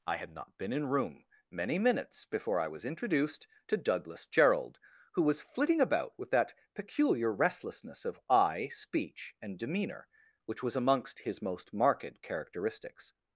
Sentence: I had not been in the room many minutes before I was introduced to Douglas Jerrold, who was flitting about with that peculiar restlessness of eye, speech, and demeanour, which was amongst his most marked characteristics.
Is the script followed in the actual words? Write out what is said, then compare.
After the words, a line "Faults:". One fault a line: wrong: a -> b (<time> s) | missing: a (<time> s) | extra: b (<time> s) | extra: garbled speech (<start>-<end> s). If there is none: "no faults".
I had not been in room many minutes before I was introduced to Douglas Jerrold, who was flitting about with that peculiar restlessness of eye, speech, and demeanour, which was amongst his most marked characteristics.
Faults:
missing: the (0.9 s)